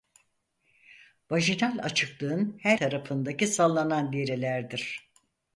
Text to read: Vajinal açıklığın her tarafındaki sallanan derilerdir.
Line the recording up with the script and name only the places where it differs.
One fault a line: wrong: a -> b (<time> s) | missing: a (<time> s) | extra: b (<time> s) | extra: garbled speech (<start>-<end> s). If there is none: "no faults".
no faults